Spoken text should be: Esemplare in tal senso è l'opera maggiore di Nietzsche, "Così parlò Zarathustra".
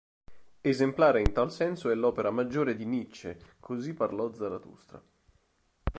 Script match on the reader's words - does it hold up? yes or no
yes